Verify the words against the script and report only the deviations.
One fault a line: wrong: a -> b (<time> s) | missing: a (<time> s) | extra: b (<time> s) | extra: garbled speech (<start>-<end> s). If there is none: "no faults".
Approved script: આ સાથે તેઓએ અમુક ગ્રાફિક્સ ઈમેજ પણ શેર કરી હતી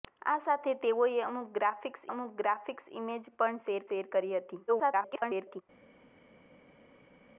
extra: અમુક ગ્રાફિક્સ (2.1 s)
extra: શેર (3.9 s)
extra: garbled speech (4.7-5.6 s)